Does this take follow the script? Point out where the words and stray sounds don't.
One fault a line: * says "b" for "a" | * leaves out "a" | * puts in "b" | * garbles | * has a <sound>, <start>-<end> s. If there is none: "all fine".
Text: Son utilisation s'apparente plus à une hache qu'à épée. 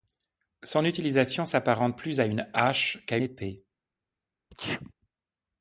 * has a sneeze, 4.5-4.9 s